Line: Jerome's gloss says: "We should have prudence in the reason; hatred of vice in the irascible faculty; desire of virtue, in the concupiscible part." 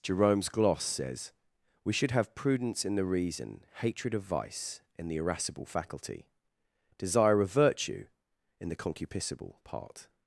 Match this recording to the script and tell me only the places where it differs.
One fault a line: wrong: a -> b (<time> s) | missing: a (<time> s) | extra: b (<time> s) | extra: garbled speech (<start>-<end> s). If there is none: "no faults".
no faults